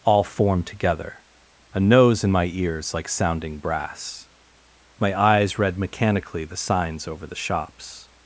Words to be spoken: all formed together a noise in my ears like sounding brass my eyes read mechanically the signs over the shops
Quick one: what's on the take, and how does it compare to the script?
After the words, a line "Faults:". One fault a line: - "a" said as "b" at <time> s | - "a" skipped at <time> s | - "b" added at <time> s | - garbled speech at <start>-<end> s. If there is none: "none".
all formed together a nose in my ears like sounding brass my eyes read mechanically the signs over the shops
Faults:
- "noise" said as "nose" at 1.8 s